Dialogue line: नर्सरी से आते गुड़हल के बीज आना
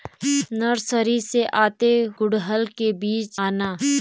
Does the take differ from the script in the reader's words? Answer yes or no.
no